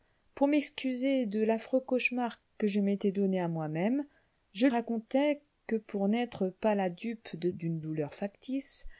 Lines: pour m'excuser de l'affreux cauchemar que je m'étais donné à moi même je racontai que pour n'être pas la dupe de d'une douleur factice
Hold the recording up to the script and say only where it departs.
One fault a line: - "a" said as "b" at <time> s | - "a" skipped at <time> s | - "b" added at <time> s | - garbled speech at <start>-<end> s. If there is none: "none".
none